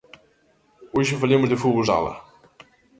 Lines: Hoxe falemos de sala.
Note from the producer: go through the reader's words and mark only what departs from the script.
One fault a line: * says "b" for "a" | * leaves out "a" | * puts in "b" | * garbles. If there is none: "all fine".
* puts in "fútbol"